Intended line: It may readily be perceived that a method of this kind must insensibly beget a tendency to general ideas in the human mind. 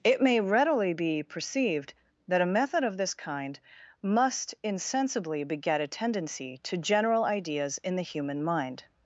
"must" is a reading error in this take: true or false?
false